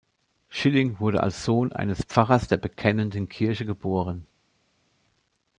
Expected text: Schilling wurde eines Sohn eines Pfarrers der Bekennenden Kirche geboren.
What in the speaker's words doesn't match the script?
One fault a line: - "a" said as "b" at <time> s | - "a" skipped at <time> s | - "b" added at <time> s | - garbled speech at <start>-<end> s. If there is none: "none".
- "eines" said as "als" at 1.2 s